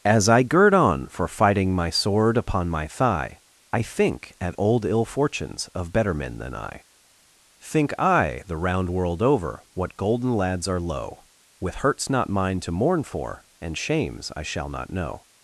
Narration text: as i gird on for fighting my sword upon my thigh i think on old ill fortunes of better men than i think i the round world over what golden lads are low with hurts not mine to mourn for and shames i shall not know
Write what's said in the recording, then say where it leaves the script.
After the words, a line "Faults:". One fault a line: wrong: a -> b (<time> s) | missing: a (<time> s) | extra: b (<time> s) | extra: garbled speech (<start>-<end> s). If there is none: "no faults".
as i gird on for fighting my sword upon my thigh i think at old ill fortunes of better men than i think i the round world over what golden lads are low with hurts not mine to mourn for and shames i shall not know
Faults:
wrong: on -> at (4.4 s)